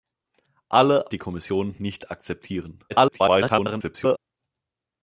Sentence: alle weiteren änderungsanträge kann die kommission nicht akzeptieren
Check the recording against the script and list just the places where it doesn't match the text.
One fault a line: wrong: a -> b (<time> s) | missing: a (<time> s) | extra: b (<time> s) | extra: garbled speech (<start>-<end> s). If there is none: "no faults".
missing: weiteren änderungsanträge kann (1.1 s)
extra: garbled speech (2.9-4.2 s)